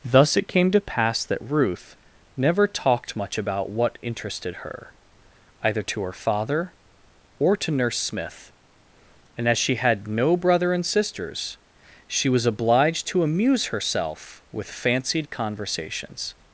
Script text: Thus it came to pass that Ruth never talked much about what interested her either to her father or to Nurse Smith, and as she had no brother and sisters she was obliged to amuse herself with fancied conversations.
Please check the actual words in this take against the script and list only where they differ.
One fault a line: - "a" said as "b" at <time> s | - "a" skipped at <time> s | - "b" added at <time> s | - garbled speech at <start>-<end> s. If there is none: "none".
none